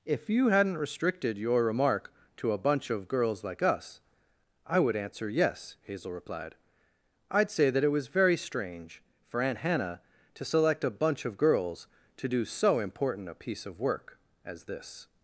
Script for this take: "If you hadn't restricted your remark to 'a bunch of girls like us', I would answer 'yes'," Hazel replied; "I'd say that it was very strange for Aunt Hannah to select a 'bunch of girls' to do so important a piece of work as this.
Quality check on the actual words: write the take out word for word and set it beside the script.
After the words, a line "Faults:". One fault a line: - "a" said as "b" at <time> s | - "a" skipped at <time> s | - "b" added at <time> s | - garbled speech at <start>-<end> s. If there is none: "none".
"If you hadn't restricted your remark to 'a bunch of girls like us', I would answer 'yes'," Hazel replied; "I'd say that it was very strange for Aunt Hannah to select a 'bunch of girls' to do so important a piece of work as this.
Faults:
none